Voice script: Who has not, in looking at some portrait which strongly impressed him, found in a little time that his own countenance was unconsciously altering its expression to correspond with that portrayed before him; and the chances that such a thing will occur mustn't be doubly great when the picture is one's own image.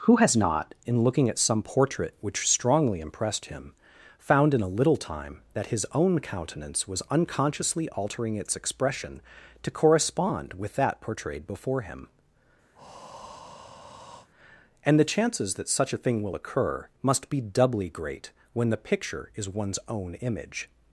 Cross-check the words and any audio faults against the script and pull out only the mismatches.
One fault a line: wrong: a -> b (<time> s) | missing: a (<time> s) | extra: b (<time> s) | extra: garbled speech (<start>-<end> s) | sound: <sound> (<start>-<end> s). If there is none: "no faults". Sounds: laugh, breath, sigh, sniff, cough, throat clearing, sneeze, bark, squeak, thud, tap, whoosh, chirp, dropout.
sound: breath (12.7-14.3 s)
wrong: mustn't -> must (17.0 s)